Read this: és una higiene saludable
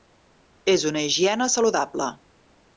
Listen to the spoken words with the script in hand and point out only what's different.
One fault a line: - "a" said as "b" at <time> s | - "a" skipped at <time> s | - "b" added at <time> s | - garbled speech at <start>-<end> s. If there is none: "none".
none